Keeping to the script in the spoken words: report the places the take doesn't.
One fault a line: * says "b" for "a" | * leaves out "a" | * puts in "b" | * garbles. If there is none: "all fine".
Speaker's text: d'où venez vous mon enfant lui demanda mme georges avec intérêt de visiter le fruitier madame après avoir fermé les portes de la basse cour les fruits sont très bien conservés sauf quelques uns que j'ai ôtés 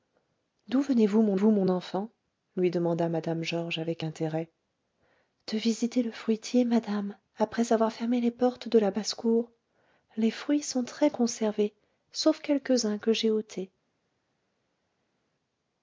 * puts in "vous mon"
* leaves out "bien"